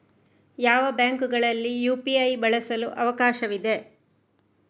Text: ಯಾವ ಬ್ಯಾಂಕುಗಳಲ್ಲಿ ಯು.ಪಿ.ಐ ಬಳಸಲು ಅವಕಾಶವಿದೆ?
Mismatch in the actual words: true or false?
false